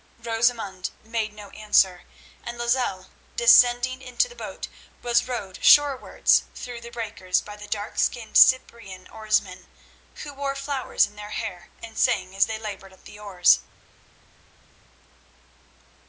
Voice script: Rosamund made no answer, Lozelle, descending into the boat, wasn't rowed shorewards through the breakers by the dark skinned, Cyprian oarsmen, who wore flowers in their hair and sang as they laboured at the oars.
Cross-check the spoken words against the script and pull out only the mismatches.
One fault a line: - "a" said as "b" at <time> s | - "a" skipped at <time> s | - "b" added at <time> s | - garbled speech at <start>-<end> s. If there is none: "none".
- "and" added at 2.4 s
- "wasn't" said as "was" at 5.0 s